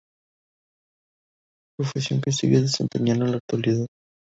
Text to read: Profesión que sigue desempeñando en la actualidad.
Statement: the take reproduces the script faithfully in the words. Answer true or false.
true